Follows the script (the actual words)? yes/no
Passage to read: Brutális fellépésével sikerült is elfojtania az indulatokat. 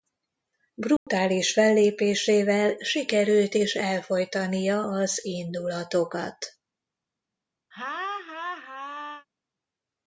yes